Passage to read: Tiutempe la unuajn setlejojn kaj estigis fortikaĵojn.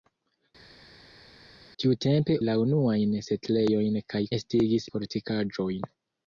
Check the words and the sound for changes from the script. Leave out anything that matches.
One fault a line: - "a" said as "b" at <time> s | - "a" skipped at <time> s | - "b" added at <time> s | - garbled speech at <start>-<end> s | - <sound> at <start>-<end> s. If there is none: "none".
none